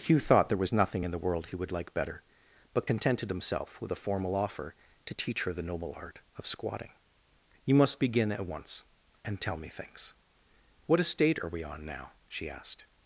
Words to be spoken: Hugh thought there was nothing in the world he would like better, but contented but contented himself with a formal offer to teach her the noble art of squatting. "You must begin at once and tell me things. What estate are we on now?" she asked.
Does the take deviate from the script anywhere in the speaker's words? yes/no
yes